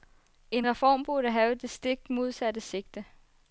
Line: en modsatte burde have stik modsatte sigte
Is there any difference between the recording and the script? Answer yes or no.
yes